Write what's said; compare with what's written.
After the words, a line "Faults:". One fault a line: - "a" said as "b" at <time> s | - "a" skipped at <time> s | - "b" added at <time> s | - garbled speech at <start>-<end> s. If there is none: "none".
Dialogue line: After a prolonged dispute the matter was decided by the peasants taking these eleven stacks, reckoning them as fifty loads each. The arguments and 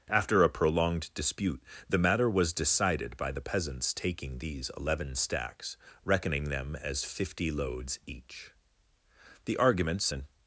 After a prolonged dispute the matter was decided by the peasants taking these eleven stacks, reckoning them as fifty loads each. The arguments and
Faults:
none